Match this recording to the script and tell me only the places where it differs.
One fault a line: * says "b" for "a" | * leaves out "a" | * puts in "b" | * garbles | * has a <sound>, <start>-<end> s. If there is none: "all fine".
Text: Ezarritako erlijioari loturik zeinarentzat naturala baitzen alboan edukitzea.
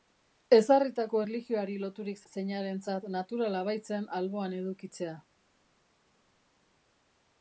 all fine